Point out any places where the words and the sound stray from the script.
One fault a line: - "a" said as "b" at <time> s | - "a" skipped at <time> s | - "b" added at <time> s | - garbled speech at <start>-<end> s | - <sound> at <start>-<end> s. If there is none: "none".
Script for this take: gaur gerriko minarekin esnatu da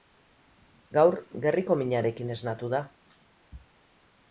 none